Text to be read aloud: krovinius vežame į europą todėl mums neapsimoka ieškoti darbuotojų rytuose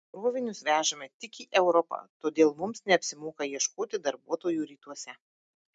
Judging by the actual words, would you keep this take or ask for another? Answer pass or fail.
fail